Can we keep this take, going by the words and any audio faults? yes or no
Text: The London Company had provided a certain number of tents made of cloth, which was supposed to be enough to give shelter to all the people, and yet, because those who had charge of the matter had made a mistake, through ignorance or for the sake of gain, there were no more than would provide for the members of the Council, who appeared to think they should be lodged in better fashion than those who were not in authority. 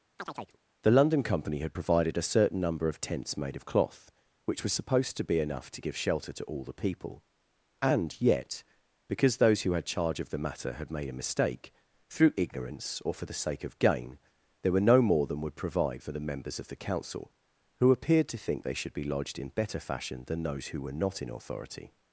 no